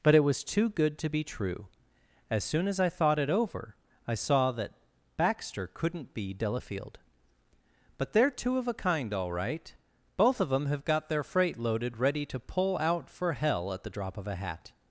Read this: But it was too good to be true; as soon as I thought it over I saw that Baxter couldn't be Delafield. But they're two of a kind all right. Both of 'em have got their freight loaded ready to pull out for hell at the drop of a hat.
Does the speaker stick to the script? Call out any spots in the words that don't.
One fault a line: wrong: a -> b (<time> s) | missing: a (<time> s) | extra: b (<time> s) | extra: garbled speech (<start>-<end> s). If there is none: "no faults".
wrong: em -> them (10.5 s)